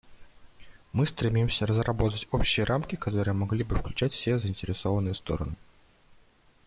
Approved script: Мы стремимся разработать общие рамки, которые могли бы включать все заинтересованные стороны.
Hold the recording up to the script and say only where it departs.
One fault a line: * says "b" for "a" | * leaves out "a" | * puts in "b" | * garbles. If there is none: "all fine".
all fine